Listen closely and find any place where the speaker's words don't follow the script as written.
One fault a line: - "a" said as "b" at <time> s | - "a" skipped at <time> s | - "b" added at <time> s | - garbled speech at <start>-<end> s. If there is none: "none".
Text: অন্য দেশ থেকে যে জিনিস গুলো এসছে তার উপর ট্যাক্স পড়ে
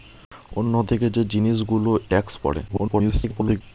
- "দেশ" skipped at 0.7 s
- "এসছে তার উপর" skipped at 1.9 s
- garbled speech at 2.7-3.6 s